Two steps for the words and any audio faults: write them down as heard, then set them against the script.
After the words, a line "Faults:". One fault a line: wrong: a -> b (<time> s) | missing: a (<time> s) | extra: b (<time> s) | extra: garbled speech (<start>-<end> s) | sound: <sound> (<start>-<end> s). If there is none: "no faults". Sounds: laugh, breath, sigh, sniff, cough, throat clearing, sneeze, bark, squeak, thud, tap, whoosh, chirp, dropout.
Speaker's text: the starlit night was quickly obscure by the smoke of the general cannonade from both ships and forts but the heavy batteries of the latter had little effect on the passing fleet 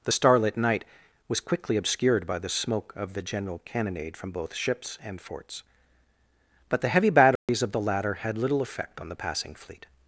the starlit night was quickly obscured by the smoke of the general cannonade from both ships and forts but the heavy batteries of the latter had little effect on the passing fleet
Faults:
wrong: obscure -> obscured (1.7 s)
sound: dropout (7.4-7.5 s)